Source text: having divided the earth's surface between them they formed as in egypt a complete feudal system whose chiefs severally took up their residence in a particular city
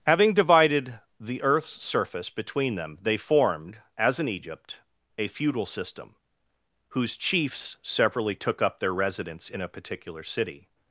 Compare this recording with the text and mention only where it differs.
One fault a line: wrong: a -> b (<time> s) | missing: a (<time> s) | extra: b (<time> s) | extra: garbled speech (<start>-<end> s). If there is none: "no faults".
missing: complete (5.3 s)